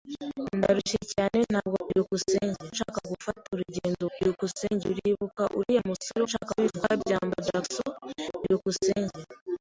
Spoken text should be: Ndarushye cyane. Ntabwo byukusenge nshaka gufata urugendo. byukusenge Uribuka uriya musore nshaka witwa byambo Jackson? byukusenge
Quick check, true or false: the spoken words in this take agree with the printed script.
true